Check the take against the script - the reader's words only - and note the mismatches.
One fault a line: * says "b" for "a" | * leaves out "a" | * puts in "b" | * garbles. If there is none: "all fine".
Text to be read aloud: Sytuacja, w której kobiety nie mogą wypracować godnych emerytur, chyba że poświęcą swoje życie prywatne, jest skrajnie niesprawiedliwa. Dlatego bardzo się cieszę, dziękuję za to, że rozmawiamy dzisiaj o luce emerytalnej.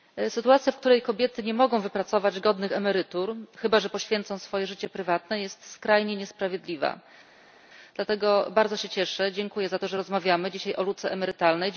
all fine